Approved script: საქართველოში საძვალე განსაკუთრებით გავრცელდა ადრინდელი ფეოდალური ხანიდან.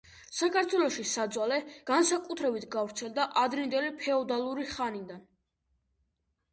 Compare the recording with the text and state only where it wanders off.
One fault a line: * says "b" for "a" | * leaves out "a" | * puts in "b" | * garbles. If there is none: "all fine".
all fine